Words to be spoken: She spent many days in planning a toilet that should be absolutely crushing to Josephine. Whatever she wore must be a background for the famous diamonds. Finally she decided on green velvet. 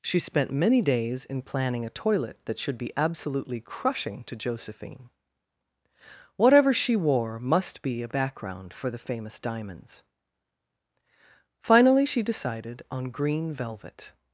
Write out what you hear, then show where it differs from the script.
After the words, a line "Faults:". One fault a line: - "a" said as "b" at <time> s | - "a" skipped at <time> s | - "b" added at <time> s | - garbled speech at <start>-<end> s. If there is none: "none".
She spent many days in planning a toilet that should be absolutely crushing to Josephine. Whatever she wore must be a background for the famous diamonds. Finally she decided on green velvet.
Faults:
none